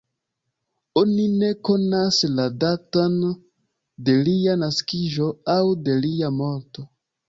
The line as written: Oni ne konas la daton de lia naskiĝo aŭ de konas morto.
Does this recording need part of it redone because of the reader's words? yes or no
yes